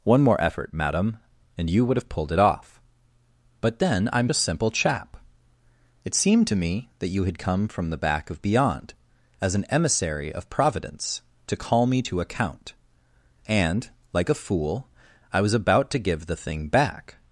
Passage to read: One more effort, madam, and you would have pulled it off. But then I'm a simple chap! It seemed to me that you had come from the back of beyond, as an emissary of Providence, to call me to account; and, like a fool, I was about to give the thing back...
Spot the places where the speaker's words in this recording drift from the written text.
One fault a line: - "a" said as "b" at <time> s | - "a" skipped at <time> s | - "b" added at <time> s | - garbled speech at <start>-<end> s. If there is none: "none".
none